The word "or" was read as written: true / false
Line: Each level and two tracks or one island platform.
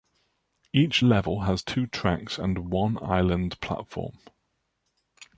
false